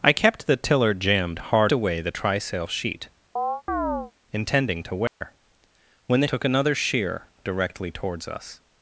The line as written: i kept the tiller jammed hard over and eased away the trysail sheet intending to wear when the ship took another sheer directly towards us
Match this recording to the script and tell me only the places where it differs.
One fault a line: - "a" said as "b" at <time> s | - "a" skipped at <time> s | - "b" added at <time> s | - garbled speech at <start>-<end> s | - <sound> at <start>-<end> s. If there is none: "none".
- "over and eased" skipped at 1.7 s
- chirp at 3.4-4.1 s
- dropout at 5.1-5.2 s
- "ship" skipped at 6.3 s